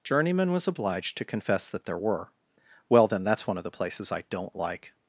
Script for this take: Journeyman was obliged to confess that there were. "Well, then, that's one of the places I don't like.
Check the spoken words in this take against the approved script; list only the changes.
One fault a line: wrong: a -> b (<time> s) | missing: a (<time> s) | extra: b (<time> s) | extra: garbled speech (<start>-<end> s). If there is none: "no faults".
no faults